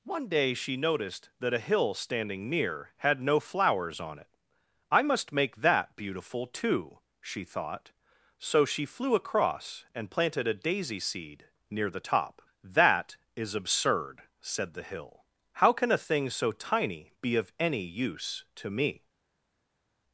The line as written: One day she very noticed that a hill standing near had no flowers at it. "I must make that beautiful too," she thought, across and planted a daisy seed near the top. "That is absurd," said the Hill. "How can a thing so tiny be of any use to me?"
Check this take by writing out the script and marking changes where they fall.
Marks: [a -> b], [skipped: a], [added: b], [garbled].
One day she [skipped: very] noticed that a hill standing near had no flowers [at -> on] it. "I must make that beautiful too," she thought, [added: so she flew] across and planted a daisy seed near the top. "That is absurd," said the Hill. "How can a thing so tiny be of any use to me?"